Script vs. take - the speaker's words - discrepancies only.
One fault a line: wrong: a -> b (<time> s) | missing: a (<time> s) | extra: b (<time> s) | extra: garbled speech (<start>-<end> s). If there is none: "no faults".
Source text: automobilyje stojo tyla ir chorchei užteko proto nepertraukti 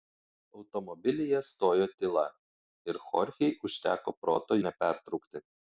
no faults